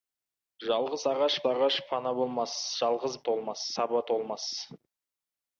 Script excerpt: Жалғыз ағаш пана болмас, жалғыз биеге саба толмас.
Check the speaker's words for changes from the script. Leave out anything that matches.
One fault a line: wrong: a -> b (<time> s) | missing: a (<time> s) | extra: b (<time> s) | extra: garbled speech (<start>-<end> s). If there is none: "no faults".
extra: ағаш (1.5 s)
wrong: биеге -> толмас (3.3 s)